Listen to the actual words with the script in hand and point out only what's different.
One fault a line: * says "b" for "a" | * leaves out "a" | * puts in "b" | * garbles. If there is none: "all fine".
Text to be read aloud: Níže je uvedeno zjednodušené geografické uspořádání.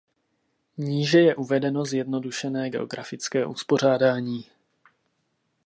all fine